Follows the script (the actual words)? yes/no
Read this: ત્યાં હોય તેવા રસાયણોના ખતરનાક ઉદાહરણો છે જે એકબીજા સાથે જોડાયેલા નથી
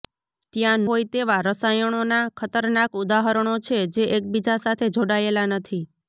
yes